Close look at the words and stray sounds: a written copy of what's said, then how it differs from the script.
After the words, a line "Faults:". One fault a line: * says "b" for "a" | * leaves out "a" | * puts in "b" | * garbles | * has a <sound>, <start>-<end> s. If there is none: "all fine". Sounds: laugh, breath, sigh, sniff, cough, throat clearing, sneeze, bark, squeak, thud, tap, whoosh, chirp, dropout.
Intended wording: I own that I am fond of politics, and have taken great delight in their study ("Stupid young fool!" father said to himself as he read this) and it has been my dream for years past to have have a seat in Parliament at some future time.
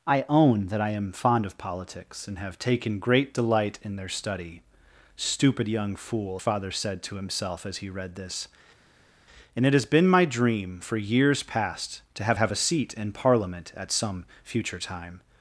I own that I am fond of politics, and have taken great delight in their study ("Stupid young fool!" father said to himself as he read this) and it has been my dream for years past to have have a seat in Parliament at some future time.
Faults:
all fine